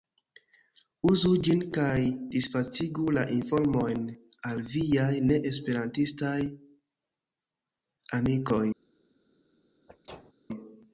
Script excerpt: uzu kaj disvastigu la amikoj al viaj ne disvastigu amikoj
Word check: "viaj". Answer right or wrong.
right